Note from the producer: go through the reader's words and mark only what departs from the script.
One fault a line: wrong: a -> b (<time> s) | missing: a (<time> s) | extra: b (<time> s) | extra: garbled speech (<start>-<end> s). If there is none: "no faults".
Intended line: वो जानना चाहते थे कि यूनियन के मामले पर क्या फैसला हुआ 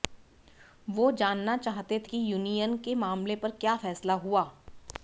missing: थे (2.0 s)